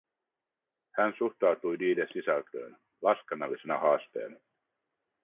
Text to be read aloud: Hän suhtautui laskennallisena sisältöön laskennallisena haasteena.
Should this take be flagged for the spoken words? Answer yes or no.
yes